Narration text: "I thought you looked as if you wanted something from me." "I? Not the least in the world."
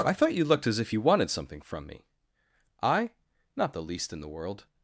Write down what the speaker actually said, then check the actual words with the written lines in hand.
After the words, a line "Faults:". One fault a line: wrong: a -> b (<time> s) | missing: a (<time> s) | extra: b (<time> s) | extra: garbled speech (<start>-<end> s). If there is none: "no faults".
"I thought you looked as if you wanted something from me." "I? Not the least in the world."
Faults:
no faults